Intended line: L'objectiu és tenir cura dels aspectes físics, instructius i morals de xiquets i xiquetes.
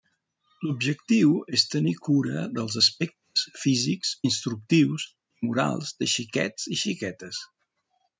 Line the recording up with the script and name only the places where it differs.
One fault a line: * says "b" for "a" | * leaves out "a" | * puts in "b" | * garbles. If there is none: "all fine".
all fine